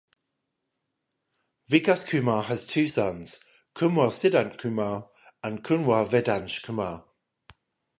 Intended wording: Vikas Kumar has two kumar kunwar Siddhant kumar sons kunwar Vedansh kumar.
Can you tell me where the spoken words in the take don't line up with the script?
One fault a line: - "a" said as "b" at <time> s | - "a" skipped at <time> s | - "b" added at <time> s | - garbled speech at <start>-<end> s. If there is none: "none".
- "kumar" said as "sons" at 2.8 s
- "sons" said as "and" at 5.4 s